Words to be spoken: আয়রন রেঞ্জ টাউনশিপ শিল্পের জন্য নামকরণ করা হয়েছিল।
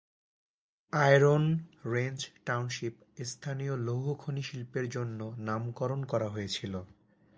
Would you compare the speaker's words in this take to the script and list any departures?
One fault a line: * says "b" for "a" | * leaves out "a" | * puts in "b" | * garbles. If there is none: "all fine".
* puts in "স্থানীয় লৌহ খনি"